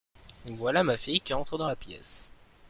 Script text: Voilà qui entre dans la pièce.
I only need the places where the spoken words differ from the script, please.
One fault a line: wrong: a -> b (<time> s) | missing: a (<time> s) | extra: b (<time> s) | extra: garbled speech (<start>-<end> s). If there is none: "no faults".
extra: ma fille (0.8 s)